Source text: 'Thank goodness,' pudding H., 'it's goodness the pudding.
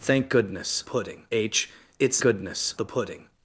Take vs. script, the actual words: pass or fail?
pass